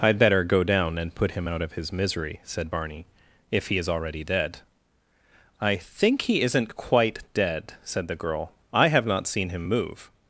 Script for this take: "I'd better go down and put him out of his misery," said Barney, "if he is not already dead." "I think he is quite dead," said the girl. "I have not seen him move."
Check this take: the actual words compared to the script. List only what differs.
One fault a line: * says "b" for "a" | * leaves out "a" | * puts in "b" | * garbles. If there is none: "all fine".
* leaves out "not"
* says "isn't" for "is"